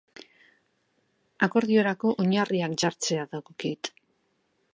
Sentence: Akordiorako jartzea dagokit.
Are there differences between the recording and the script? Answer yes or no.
yes